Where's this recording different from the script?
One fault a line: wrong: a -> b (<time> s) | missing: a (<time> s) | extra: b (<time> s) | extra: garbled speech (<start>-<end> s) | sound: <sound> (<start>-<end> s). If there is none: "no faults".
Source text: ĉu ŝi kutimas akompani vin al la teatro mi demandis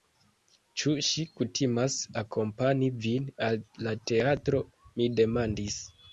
no faults